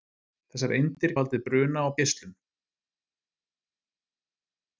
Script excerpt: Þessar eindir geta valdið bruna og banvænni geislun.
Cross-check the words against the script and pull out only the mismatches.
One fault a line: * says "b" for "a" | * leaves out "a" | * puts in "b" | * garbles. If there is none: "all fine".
* leaves out "geta"
* leaves out "banvænni"